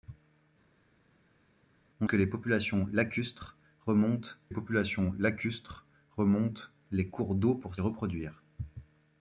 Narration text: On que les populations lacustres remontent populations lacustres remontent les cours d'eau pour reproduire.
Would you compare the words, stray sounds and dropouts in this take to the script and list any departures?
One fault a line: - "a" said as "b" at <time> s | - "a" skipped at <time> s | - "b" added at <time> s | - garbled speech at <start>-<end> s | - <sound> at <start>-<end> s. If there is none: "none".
none